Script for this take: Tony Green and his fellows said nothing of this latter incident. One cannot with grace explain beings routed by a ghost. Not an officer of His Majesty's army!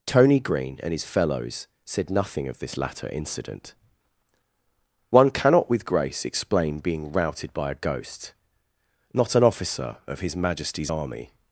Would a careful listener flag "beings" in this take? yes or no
yes